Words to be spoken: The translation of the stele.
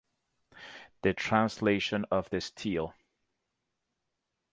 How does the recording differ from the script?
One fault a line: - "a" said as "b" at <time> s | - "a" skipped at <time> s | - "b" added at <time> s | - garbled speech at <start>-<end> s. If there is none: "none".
none